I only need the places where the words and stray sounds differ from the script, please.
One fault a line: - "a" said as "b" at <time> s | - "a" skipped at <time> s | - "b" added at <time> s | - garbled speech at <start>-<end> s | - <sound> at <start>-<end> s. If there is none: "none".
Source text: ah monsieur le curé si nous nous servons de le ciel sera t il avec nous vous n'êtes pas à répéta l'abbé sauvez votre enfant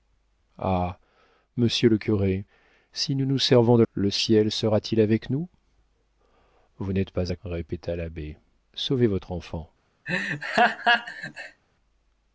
- laugh at 10.1-11.6 s